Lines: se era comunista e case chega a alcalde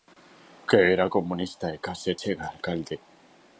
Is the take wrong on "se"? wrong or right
wrong